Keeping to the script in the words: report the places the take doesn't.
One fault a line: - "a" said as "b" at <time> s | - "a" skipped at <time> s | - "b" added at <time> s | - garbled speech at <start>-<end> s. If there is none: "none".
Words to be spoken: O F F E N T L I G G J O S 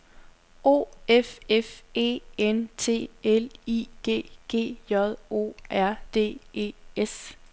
- "R D E" added at 5.7 s